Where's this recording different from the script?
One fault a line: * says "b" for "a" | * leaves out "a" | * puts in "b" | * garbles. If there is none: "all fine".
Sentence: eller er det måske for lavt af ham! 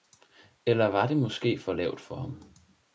* says "var" for "er"
* says "for" for "af"